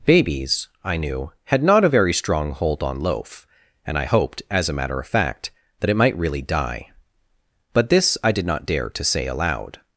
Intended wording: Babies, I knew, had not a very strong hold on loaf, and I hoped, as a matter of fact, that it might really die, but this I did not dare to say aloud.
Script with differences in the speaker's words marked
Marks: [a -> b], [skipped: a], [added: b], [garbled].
Babies, I knew, had not a very strong hold on loaf, and I hoped, as a matter of fact, that it might really die, but this I did not dare to say aloud.